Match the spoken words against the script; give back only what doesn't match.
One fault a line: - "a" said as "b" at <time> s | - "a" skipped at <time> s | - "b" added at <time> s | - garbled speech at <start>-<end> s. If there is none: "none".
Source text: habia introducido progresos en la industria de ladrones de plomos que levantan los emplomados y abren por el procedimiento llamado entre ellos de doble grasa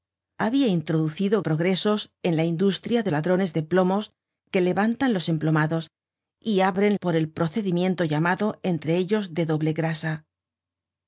none